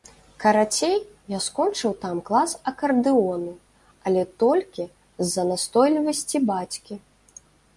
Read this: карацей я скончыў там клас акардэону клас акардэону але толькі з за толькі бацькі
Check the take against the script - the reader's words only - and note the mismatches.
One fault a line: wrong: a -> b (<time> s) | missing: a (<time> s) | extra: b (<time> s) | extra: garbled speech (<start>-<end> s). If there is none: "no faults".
missing: клас акардэону (3.5 s)
wrong: толькі -> настойлівасці (5.5 s)